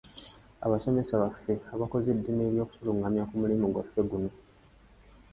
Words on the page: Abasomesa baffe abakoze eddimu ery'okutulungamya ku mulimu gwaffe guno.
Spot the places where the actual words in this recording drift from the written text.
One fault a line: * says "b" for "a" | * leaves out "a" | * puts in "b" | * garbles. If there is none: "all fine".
all fine